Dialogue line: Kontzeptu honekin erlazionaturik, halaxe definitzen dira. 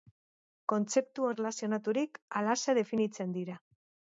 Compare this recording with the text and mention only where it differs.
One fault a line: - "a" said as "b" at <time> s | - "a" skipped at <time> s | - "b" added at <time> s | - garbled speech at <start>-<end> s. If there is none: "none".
- "honekin" skipped at 1.3 s